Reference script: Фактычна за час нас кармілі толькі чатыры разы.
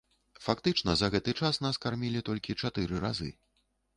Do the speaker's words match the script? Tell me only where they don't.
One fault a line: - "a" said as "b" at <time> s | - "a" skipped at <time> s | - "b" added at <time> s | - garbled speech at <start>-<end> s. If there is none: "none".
- "гэты" added at 1.1 s